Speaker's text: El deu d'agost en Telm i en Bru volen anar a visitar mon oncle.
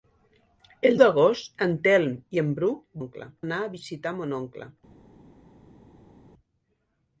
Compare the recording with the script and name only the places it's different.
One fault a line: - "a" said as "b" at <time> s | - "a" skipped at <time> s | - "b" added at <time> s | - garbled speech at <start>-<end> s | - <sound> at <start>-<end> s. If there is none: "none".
- "deu" skipped at 1.0 s
- "volen" said as "oncle" at 3.0 s